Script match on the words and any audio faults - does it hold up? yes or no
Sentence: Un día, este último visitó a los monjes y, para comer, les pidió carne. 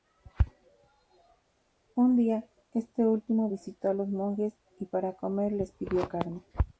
yes